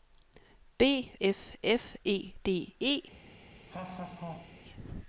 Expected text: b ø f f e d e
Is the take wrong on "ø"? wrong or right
wrong